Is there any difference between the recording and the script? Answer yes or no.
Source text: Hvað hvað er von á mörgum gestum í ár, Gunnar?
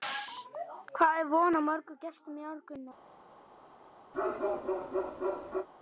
yes